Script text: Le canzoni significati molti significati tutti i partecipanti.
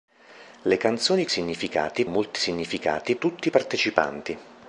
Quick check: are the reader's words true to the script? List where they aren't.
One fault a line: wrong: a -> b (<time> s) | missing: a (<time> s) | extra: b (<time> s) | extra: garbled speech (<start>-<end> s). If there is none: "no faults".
no faults